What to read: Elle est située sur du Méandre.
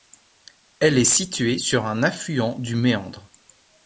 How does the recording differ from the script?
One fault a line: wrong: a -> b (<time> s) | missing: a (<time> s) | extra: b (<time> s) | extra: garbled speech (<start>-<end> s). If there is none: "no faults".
extra: un affluent (1.9 s)